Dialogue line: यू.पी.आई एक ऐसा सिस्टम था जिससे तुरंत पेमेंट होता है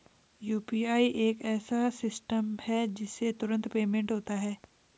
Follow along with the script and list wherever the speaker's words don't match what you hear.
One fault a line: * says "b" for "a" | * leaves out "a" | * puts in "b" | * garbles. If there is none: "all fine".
* says "है" for "था"